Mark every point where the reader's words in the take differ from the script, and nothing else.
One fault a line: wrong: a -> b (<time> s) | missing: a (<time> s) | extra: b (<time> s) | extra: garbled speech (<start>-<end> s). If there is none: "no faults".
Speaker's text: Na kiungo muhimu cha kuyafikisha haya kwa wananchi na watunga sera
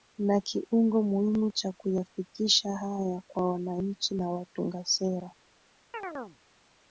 no faults